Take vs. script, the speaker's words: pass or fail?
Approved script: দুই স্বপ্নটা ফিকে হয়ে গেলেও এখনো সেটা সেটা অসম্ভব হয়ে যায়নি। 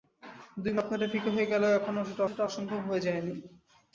pass